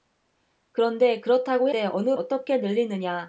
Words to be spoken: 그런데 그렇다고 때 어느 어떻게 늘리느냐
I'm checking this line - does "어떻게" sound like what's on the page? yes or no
yes